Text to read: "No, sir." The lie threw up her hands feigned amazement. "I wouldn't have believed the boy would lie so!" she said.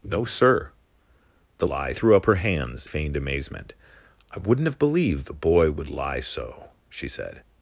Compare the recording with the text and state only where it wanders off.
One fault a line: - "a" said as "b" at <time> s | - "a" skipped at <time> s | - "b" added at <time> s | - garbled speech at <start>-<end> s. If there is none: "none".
none